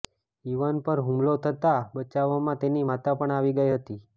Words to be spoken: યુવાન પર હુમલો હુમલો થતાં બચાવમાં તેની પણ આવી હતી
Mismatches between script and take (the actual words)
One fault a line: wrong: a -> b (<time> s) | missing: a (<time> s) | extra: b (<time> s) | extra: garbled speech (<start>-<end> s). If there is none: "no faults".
missing: હુમલો (1.4 s)
extra: માતા (2.8 s)
extra: ગઈ (3.6 s)